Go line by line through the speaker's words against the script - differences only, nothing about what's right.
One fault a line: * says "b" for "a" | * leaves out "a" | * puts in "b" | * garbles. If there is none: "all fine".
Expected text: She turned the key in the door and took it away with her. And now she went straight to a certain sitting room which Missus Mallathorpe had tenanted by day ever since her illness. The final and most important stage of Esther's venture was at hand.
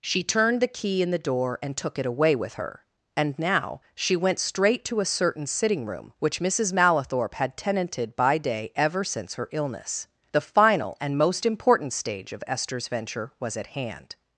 all fine